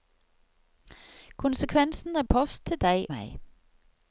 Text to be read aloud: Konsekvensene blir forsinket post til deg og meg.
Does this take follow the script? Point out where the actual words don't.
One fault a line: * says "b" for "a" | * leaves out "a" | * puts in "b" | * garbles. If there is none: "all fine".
* leaves out "blir forsinket"
* leaves out "og"